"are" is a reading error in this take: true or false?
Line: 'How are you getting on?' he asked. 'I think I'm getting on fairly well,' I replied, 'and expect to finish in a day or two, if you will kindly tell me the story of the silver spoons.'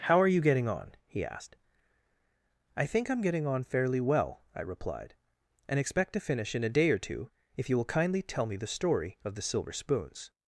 false